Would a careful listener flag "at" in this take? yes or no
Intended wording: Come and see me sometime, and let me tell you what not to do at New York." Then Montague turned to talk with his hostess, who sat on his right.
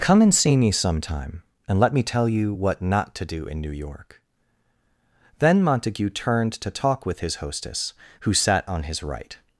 yes